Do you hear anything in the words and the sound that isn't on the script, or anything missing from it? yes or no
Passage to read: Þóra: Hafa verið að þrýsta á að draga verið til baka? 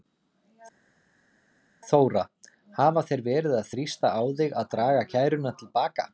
yes